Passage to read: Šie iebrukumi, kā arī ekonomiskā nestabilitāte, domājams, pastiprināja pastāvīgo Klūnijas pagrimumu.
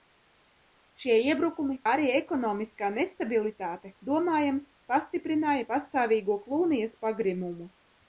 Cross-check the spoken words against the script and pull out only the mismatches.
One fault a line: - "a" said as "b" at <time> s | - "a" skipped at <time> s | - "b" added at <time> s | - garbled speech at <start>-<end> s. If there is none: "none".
- "kā" skipped at 1.8 s